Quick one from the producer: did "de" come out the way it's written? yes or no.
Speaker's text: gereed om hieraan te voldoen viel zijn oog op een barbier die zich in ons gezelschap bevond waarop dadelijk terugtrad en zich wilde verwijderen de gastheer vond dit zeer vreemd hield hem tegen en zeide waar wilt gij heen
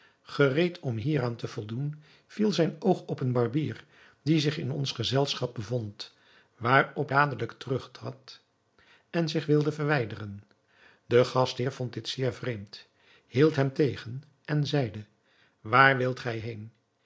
yes